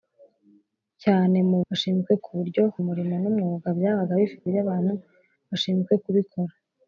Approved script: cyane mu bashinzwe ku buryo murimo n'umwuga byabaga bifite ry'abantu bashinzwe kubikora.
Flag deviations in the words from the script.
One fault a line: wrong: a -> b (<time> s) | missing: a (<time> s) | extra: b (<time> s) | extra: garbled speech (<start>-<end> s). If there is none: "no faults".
no faults